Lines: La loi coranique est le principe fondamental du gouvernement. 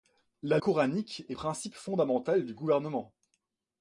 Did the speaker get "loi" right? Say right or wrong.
wrong